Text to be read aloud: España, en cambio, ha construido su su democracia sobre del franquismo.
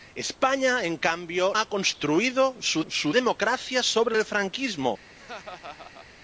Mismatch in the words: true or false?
false